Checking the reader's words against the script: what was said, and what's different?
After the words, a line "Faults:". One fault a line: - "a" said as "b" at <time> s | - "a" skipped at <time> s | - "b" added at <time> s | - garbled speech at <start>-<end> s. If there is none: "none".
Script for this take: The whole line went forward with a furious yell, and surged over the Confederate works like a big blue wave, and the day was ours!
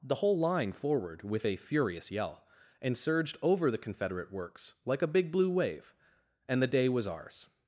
The whole line forward with a furious yell, and surged over the Confederate works like a big blue wave, and the day was ours!
Faults:
- "went" skipped at 0.7 s